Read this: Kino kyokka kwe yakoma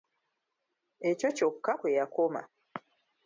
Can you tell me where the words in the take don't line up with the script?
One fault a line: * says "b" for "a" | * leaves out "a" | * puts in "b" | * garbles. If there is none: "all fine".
* says "Ekyo" for "Kino"